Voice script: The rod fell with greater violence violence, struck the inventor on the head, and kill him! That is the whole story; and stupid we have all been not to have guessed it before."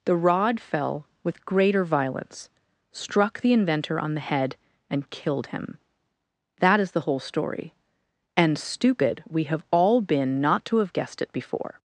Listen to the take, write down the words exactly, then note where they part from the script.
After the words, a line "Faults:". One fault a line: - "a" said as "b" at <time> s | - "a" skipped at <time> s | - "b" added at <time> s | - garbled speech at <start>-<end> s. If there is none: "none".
The rod fell with greater violence, struck the inventor on the head, and killed him! That is the whole story; and stupid we have all been not to have guessed it before."
Faults:
- "violence" skipped at 2.5 s
- "kill" said as "killed" at 5.1 s